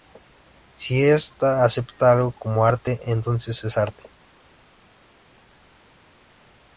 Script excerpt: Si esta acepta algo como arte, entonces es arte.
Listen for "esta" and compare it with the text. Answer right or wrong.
right